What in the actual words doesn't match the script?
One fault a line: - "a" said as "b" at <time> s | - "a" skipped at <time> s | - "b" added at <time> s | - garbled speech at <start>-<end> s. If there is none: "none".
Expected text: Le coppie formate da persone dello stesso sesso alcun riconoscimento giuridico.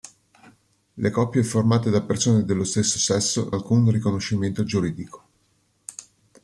none